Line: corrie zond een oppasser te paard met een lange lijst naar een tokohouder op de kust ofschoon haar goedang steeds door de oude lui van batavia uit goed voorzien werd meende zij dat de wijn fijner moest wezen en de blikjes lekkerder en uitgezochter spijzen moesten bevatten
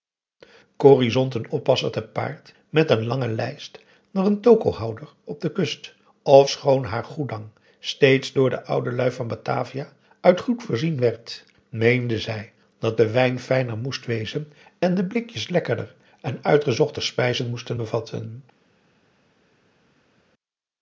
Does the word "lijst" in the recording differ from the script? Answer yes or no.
no